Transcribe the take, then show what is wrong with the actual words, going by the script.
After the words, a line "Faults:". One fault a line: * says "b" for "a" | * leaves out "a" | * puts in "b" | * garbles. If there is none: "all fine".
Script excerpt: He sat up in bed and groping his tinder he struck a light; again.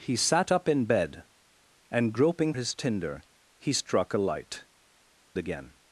He sat up in bed and groping his tinder he struck a light; again.
Faults:
all fine